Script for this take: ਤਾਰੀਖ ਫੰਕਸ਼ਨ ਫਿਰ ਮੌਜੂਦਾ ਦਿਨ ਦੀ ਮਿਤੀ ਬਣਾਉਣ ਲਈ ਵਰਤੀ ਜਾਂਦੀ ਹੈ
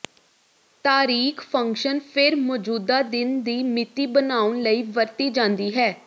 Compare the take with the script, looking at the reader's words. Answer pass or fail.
pass